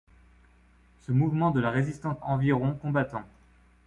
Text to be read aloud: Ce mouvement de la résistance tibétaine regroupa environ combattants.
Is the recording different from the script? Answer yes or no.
yes